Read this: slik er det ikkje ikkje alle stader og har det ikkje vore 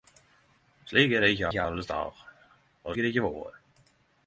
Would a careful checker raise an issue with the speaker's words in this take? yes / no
no